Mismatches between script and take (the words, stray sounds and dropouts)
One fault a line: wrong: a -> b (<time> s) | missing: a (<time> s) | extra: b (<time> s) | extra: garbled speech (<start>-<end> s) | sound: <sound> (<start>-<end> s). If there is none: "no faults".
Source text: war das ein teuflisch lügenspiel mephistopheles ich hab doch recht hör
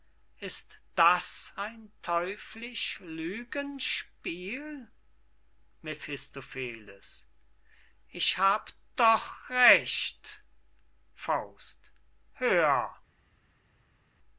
wrong: war -> ist (0.4 s)